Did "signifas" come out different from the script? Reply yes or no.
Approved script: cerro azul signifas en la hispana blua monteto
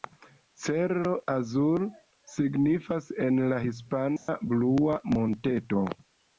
no